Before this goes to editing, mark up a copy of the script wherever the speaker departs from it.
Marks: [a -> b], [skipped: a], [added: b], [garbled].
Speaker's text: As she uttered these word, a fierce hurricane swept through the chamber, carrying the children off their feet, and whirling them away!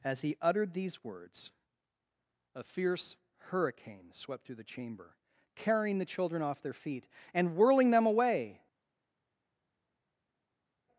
As [she -> he] uttered these [word, -> words] a fierce hurricane swept through the chamber, carrying the children off their feet, and whirling them away!